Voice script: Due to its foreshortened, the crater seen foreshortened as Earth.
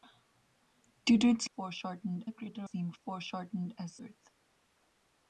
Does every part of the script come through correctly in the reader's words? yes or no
yes